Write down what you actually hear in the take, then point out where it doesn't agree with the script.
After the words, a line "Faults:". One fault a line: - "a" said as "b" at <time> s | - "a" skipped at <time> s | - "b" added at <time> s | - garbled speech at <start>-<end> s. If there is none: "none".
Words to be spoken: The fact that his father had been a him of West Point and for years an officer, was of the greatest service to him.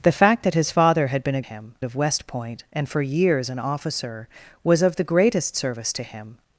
The fact that his father had been a him of West Point and for years an officer, was of the greatest service to him.
Faults:
none